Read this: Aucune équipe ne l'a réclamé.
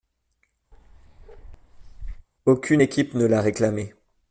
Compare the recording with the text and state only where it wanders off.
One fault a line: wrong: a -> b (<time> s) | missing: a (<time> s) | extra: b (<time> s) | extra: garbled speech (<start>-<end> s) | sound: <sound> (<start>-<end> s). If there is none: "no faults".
sound: bark (0.7-2.3 s)